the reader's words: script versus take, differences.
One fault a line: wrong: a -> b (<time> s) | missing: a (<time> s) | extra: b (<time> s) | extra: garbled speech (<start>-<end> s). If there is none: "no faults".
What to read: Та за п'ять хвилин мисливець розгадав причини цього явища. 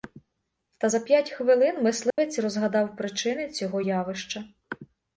no faults